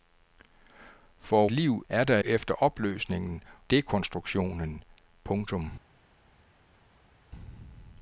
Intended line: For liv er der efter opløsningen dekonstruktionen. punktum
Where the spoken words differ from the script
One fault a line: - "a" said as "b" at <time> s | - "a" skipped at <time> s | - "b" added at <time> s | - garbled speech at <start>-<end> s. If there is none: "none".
none